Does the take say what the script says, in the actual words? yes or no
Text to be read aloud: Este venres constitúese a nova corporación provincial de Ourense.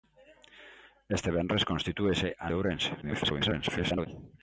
no